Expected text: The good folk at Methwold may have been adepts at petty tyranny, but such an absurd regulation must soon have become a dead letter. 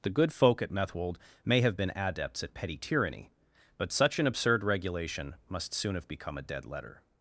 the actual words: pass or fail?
pass